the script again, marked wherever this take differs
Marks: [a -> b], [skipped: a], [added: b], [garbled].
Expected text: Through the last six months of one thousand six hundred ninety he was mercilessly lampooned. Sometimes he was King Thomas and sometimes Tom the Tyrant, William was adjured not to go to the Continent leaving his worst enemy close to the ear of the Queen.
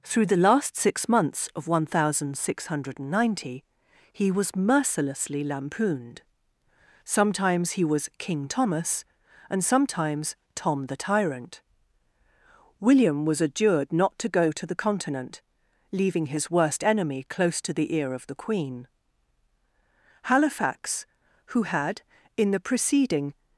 Through the last six months of one thousand six hundred ninety he was mercilessly lampooned. Sometimes he was King Thomas and sometimes Tom the Tyrant, William was adjured not to go to the Continent leaving his worst enemy close to the ear of the Queen. [added: Halifax who had in the preceding]